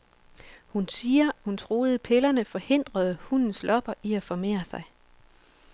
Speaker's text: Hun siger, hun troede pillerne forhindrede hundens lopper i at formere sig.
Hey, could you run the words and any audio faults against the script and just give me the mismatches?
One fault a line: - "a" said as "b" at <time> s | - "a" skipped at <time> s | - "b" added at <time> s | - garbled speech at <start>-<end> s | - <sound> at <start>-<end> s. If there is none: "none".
none